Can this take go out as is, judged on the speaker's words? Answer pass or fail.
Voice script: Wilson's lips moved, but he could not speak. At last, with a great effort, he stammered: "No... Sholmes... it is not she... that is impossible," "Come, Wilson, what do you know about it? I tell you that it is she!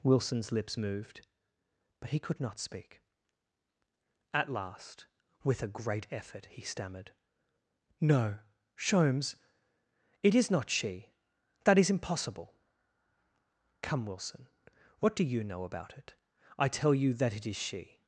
pass